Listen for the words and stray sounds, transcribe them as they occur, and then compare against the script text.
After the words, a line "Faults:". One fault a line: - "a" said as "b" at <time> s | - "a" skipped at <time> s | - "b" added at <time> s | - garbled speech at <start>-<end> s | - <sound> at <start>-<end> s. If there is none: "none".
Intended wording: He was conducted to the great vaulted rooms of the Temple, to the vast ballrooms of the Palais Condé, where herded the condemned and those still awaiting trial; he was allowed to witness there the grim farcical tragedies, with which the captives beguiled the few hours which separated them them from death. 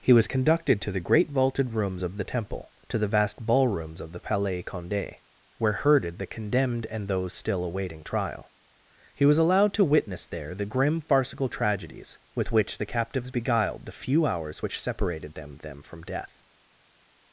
He was conducted to the great vaulted rooms of the Temple, to the vast ballrooms of the Palais Condé, where herded the condemned and those still awaiting trial; he was allowed to witness there the grim farcical tragedies, with which the captives beguiled the few hours which separated them them from death.
Faults:
none